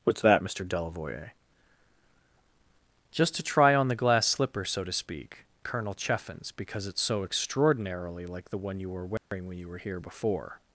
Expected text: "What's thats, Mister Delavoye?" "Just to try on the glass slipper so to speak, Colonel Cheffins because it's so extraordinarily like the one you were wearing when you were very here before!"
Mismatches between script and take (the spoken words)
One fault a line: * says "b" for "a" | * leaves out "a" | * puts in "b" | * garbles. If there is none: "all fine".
* says "that" for "thats"
* leaves out "very"